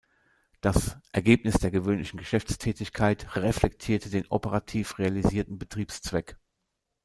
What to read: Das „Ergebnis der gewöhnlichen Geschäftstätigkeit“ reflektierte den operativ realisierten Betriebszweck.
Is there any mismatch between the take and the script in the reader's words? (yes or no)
no